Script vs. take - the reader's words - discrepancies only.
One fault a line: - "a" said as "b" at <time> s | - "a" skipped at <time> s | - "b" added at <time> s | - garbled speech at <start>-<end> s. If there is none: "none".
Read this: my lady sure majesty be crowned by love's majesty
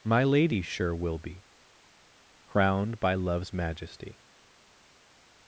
- "majesty" said as "will" at 0.9 s